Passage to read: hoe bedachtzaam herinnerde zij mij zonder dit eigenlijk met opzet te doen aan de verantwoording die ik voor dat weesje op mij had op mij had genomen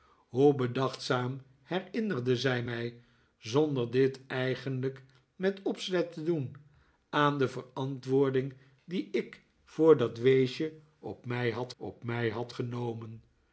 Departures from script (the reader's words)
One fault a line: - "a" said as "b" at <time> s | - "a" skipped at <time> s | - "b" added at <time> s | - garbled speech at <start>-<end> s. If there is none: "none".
none